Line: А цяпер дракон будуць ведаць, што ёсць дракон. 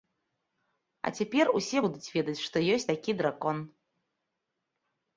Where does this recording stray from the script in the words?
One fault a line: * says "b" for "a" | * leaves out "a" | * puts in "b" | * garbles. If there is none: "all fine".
* says "усе" for "дракон"
* puts in "такі"